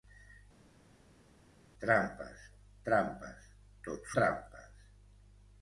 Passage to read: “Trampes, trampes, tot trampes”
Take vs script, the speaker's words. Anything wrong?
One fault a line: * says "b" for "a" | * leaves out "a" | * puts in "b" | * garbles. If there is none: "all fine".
all fine